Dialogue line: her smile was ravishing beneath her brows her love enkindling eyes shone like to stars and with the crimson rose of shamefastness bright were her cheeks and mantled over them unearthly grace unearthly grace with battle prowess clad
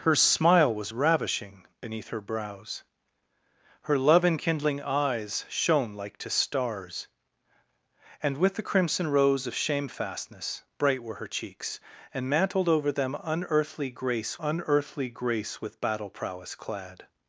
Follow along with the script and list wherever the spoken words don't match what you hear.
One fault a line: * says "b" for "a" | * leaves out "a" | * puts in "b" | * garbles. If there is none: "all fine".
all fine